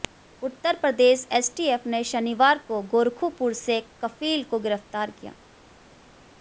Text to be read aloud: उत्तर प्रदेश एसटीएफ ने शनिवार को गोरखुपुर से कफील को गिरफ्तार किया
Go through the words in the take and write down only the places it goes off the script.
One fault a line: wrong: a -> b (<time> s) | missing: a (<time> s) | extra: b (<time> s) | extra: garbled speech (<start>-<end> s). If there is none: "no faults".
no faults